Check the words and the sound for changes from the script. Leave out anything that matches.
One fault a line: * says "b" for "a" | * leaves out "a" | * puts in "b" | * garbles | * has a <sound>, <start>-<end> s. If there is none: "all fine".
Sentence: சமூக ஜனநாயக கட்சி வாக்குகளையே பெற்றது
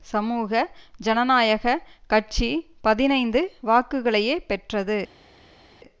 * puts in "பதினைந்து"